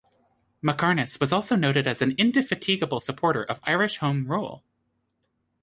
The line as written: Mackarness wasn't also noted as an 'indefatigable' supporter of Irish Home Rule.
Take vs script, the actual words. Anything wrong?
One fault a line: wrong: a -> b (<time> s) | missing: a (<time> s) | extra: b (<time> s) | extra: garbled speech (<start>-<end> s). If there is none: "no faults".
wrong: wasn't -> was (1.2 s)